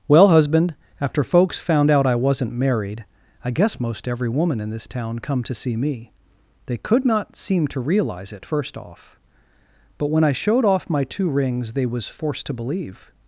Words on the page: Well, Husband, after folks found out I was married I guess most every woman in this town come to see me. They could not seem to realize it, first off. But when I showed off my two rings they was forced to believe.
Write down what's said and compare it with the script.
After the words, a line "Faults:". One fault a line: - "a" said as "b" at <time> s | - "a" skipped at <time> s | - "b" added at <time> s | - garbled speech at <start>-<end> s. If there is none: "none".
Well, Husband, after folks found out I wasn't married I guess most every woman in this town come to see me. They could not seem to realize it, first off. But when I showed off my two rings they was forced to believe.
Faults:
- "was" said as "wasn't" at 2.1 s